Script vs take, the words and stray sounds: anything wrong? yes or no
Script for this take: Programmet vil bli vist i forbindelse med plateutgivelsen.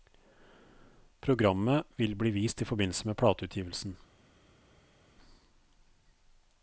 no